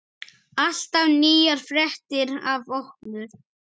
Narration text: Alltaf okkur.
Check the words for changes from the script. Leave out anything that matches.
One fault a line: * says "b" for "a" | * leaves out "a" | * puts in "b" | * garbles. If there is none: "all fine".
* puts in "nýjar fréttir af"